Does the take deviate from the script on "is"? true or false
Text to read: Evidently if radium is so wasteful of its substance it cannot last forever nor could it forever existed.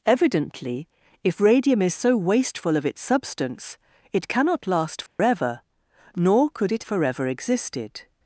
false